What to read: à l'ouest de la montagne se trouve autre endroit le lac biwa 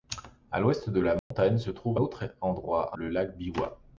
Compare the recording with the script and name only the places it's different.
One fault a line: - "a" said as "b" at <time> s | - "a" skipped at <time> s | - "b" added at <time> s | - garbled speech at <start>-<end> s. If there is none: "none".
none